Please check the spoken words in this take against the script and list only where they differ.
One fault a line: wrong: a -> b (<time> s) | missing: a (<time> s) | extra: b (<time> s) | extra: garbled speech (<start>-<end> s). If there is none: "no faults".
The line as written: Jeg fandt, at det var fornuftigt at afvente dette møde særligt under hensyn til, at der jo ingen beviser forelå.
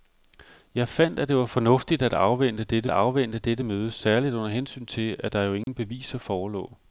extra: afvente dette (2.9 s)